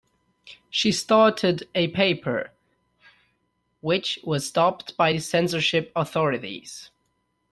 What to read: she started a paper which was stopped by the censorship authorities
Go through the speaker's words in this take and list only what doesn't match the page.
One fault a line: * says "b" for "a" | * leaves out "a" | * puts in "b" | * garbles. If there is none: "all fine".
all fine